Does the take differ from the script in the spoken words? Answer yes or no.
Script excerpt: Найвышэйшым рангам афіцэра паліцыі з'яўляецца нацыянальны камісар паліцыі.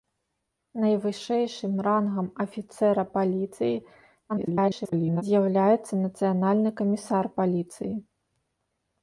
yes